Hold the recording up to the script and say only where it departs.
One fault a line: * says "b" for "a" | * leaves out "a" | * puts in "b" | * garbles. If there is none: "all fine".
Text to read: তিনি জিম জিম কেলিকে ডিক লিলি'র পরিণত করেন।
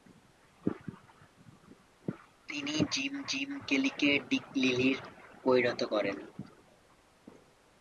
all fine